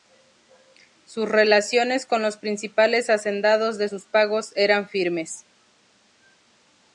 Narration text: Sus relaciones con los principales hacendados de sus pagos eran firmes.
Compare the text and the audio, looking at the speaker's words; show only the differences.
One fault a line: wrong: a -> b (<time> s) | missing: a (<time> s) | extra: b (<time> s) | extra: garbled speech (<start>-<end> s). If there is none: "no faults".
no faults